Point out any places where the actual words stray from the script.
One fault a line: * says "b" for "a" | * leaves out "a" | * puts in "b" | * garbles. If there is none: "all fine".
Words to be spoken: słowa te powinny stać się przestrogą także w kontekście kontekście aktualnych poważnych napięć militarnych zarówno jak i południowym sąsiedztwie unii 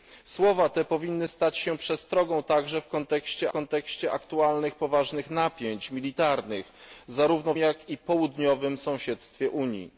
all fine